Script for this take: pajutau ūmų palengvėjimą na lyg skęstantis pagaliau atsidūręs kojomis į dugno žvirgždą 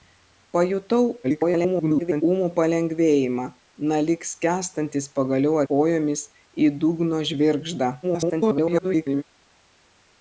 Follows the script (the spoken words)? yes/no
no